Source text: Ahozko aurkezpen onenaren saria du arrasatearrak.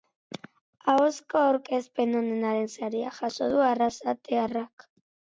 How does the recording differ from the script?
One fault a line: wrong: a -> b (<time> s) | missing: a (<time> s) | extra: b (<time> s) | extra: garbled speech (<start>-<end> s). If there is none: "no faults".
extra: jaso (3.2 s)